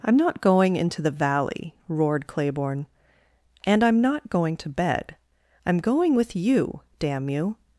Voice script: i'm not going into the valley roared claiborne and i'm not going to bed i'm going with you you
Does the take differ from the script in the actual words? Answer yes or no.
yes